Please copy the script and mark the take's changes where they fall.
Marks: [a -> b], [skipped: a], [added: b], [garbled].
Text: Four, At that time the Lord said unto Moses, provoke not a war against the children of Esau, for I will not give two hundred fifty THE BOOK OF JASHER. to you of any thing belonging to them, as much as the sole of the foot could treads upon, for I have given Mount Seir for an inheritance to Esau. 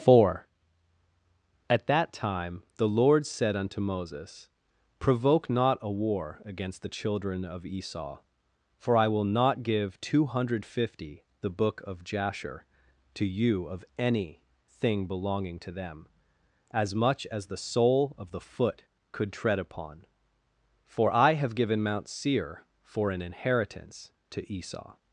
Four, At that time the Lord said unto Moses, provoke not a war against the children of Esau, for I will not give two hundred fifty THE BOOK OF JASHER. to you of any thing belonging to them, as much as the sole of the foot could [treads -> tread] upon, for I have given Mount Seir for an inheritance to Esau.